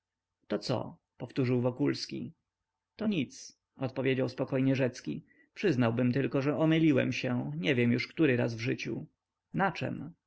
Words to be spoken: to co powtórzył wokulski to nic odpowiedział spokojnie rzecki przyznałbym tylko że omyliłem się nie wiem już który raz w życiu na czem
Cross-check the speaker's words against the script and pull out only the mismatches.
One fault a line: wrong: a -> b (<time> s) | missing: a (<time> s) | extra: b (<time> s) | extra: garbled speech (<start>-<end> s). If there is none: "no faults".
no faults